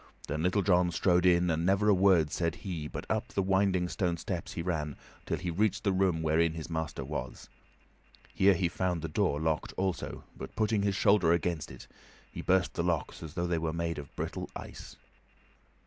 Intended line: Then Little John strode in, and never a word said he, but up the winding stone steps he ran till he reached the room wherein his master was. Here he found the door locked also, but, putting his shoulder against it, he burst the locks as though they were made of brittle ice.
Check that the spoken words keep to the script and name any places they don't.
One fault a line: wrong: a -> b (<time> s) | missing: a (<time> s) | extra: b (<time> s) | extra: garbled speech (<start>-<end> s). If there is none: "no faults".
no faults